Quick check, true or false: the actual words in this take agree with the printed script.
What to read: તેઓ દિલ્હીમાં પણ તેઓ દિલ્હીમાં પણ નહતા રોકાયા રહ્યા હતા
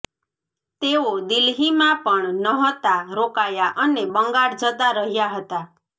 false